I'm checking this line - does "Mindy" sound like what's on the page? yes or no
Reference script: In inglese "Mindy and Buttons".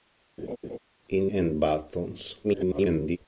no